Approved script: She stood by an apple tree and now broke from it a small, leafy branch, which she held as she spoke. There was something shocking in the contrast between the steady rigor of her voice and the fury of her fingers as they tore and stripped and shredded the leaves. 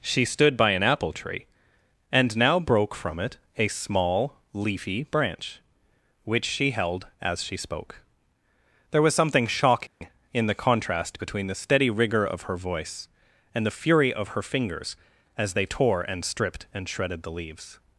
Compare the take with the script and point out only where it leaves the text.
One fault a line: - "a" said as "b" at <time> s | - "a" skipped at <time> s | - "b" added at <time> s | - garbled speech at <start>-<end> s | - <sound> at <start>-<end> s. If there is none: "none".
- dropout at 9.9-10.0 s